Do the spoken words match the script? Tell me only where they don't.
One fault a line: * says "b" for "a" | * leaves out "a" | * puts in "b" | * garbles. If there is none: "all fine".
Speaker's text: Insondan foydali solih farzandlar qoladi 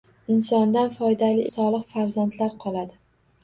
all fine